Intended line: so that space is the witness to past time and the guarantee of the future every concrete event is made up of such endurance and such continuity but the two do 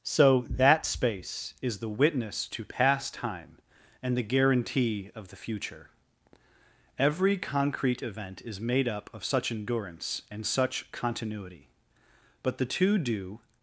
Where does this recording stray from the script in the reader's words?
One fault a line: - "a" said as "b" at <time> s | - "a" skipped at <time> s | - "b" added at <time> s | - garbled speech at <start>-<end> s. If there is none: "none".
none